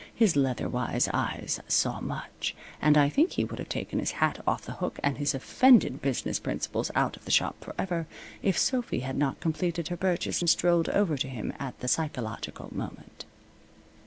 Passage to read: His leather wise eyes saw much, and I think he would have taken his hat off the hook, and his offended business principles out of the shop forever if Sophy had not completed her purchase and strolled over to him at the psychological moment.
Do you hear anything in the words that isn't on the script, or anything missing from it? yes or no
no